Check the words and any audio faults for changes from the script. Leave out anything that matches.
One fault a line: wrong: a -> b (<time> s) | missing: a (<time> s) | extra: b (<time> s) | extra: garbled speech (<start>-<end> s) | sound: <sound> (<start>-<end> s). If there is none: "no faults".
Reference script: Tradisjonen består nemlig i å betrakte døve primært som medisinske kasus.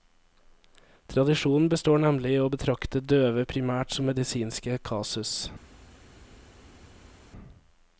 no faults